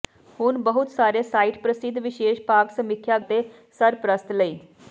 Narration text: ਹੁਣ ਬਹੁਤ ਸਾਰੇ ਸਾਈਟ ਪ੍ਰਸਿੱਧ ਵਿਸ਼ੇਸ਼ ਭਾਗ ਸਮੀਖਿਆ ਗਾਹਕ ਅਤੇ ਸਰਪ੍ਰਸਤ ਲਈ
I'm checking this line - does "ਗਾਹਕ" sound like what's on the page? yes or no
no